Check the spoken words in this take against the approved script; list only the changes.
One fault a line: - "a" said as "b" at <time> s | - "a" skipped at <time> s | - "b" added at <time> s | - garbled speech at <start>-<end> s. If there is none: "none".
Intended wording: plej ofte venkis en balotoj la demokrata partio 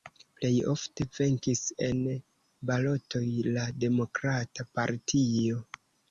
none